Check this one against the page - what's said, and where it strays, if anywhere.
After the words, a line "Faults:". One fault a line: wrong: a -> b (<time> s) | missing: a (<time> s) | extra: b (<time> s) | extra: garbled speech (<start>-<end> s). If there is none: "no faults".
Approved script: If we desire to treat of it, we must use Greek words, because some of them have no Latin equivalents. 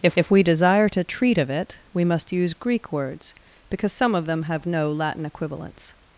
If if we desire to treat of it, we must use Greek words, because some of them have no Latin equivalents.
Faults:
extra: if (0.2 s)